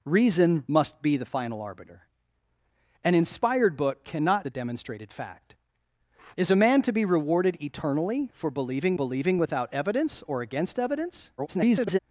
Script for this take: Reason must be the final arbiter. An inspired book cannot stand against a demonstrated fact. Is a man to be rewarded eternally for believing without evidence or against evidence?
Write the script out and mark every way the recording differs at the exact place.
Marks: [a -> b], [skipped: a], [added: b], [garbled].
Reason must be the final arbiter. An inspired book cannot [skipped: stand against] a demonstrated fact. Is a man to be rewarded eternally for believing [added: believing] without evidence or against evidence? [garbled]